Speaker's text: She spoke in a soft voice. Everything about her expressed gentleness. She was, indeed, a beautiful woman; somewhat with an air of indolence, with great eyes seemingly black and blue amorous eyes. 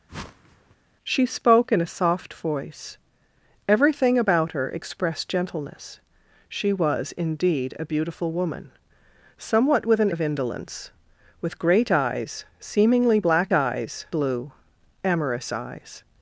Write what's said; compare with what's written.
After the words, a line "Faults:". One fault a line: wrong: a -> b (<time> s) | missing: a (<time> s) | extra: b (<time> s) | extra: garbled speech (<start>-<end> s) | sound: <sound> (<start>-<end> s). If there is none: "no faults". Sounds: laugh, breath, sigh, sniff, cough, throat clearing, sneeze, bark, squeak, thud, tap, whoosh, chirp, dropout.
She spoke in a soft voice. Everything about her expressed gentleness. She was, indeed, a beautiful woman; somewhat with an of indolence, with great eyes seemingly black eyes blue amorous eyes.
Faults:
sound: whoosh (0.1-0.8 s)
missing: air (10.1 s)
wrong: and -> eyes (13.5 s)